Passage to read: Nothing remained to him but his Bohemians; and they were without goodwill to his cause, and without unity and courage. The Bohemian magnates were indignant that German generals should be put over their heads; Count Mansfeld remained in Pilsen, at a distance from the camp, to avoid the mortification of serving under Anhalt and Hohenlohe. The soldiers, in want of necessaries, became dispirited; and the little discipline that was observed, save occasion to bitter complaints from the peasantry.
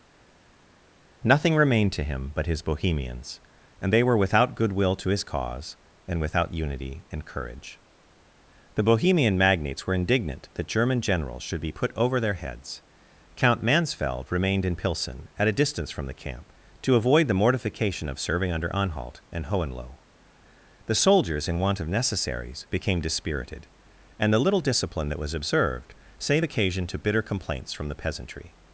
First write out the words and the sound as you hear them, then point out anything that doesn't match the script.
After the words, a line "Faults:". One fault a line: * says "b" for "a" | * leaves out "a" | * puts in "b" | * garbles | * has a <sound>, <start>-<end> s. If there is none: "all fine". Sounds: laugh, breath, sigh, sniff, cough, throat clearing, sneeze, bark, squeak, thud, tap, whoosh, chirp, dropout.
Nothing remained to him but his Bohemians; and they were without goodwill to his cause, and without unity and courage. The Bohemian magnates were indignant that German generals should be put over their heads; Count Mansfeld remained in Pilsen, at a distance from the camp, to avoid the mortification of serving under Anhalt and Hohenlohe. The soldiers, in want of necessaries, became dispirited; and the little discipline that was observed, save occasion to bitter complaints from the peasantry.
Faults:
all fine